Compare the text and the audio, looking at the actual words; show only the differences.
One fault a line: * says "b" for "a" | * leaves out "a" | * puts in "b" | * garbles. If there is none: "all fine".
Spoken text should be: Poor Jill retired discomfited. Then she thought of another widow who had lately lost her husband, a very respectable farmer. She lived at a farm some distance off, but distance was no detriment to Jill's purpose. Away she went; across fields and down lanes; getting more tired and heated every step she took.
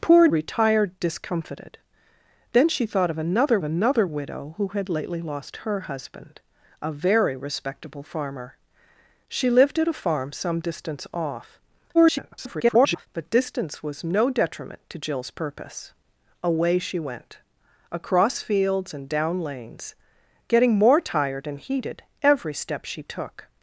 * leaves out "Jill"
* puts in "another"
* garbles